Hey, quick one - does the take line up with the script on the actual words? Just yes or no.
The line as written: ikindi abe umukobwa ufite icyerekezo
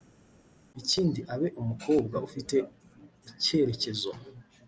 yes